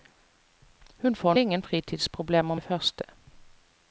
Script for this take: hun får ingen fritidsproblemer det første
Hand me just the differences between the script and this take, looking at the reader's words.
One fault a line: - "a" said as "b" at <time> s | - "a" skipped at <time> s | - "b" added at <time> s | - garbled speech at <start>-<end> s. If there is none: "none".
none